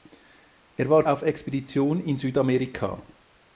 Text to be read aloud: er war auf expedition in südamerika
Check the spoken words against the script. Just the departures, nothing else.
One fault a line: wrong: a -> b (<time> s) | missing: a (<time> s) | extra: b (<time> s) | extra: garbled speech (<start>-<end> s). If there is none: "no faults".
no faults